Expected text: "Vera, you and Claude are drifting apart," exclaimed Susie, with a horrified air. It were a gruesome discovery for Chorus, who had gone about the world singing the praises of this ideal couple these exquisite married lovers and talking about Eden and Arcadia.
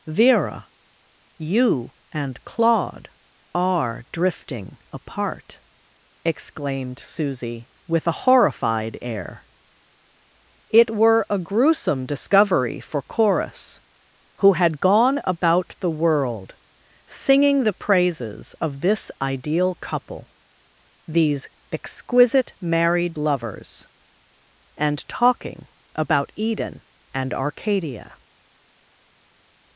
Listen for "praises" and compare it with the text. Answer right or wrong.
right